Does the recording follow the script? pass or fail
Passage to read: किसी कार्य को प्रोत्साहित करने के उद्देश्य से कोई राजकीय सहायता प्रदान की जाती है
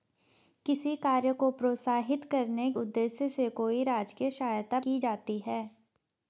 fail